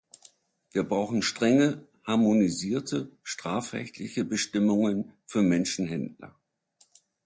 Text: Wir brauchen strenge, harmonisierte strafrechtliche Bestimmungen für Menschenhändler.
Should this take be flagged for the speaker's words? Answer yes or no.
no